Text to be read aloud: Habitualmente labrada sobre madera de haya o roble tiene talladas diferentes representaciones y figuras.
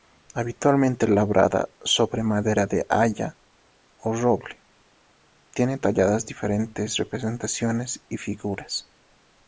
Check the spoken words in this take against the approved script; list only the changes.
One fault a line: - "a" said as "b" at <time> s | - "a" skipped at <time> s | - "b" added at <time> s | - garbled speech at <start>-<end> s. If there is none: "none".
none